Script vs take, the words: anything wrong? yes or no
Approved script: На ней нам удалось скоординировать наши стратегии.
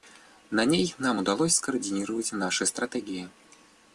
no